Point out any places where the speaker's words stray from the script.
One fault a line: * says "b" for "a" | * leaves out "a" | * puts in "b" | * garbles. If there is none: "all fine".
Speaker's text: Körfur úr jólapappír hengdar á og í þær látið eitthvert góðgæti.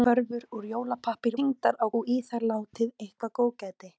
all fine